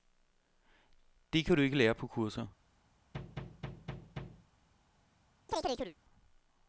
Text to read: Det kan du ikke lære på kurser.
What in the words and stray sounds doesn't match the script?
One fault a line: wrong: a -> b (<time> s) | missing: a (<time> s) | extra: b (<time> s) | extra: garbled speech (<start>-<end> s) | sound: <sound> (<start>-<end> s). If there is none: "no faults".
sound: thud (3.1-4.5 s)
sound: chirp (5.5-6.0 s)